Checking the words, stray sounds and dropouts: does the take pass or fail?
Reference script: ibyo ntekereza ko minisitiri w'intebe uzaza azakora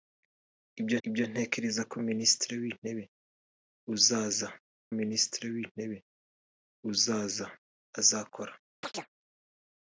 fail